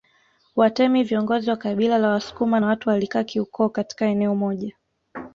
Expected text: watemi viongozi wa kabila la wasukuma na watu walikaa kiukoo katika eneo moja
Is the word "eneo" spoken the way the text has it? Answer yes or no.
yes